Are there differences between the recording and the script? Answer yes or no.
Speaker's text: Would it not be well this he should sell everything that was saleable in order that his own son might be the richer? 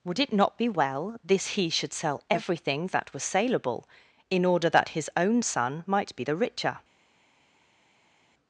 no